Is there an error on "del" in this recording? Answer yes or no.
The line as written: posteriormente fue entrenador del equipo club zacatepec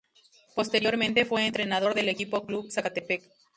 no